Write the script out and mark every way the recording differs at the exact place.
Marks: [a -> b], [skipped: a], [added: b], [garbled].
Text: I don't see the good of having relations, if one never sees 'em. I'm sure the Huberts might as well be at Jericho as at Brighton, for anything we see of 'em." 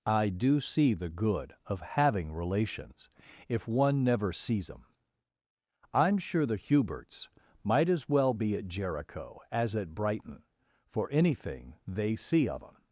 I [don't -> do] see the good of having relations, if one never sees 'em. I'm sure the Huberts might as well be at Jericho as at Brighton, for anything [we -> they] see of 'em."